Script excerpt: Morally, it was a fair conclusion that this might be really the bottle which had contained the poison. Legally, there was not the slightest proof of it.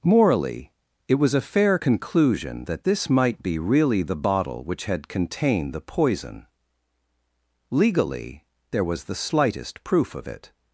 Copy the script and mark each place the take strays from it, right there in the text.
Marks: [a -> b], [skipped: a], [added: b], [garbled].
Morally, it was a fair conclusion that this might be really the bottle which had contained the poison. Legally, there was [skipped: not] the slightest proof of it.